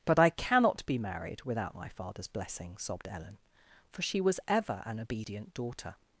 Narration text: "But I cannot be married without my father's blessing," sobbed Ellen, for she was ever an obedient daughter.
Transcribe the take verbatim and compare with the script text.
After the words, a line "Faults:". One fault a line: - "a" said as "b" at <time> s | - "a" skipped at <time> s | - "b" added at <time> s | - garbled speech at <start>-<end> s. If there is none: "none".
"But I cannot be married without my father's blessing," sobbed Ellen, for she was ever an obedient daughter.
Faults:
none